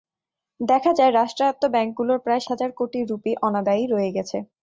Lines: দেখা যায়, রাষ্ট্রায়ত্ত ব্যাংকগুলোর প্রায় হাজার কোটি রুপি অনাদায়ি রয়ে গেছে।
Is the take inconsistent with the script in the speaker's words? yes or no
no